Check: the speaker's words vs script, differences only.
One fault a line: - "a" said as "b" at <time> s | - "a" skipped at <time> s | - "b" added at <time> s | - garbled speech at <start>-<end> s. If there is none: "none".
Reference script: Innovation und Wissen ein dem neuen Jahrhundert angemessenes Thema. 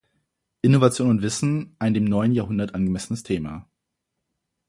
none